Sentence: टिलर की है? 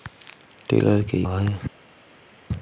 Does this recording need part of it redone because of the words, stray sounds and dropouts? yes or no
no